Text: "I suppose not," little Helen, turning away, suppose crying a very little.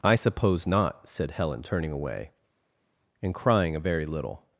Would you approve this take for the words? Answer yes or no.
no